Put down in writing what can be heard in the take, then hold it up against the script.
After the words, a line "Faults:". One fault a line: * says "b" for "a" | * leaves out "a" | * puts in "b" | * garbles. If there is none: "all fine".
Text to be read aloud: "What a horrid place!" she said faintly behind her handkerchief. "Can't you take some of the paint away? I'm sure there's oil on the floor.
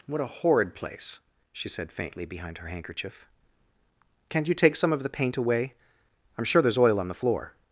"What a horrid place!" she said faintly behind her handkerchief. "Can't you take some of the paint away? I'm sure there's oil on the floor.
Faults:
all fine